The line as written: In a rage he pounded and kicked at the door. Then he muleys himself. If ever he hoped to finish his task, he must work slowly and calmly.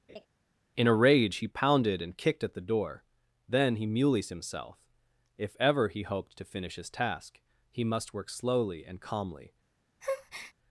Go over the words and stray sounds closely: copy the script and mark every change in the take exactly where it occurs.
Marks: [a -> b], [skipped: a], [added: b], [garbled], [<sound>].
[laugh] In a rage he pounded and kicked at the door. Then he muleys himself. If ever he hoped to finish his task, he must work slowly and calmly. [breath]